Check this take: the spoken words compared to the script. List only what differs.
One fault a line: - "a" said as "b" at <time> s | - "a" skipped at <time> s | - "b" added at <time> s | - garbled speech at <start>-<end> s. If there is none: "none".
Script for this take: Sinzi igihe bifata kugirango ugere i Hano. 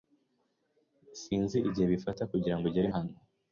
none